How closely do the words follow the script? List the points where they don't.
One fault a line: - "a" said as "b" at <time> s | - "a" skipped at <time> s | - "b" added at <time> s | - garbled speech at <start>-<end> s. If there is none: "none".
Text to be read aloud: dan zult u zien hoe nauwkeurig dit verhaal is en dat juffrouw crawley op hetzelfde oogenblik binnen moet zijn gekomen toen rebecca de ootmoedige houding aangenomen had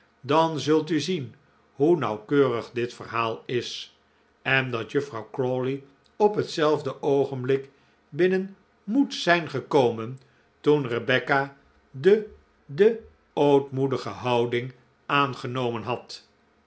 - "de" added at 12.7 s